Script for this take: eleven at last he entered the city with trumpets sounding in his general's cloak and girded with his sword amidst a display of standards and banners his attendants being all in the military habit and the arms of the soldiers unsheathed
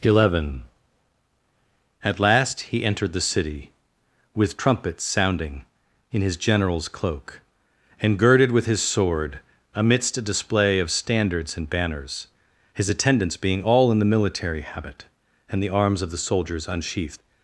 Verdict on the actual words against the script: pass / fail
pass